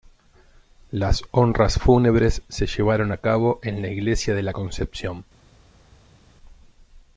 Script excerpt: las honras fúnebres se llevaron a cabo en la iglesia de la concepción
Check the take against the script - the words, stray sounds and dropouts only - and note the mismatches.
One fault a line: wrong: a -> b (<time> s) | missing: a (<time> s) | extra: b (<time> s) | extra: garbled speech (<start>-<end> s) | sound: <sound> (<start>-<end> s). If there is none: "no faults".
no faults